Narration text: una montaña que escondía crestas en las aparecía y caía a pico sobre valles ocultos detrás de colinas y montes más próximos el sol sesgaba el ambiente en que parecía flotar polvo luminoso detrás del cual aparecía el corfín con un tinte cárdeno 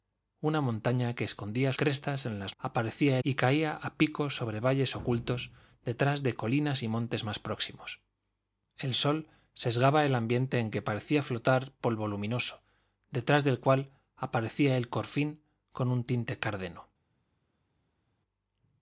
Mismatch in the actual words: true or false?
false